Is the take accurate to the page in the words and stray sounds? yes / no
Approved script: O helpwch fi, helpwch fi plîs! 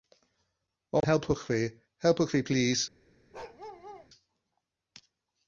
no